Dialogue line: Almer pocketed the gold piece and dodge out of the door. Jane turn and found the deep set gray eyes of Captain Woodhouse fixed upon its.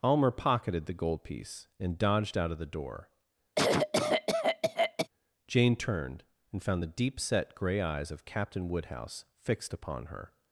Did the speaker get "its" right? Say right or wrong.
wrong